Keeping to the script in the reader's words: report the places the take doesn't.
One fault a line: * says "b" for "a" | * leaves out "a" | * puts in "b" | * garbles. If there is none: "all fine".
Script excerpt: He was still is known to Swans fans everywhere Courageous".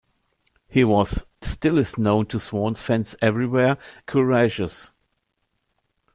all fine